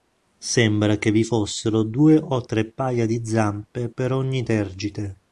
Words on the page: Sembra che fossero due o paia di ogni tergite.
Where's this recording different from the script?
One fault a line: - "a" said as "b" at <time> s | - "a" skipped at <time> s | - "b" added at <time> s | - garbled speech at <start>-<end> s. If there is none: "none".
- "vi" added at 1.1 s
- "tre" added at 2.4 s
- "zampe per" added at 3.2 s